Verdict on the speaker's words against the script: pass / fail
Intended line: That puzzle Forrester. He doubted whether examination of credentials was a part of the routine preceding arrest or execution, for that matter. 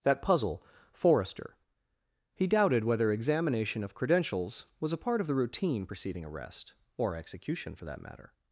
pass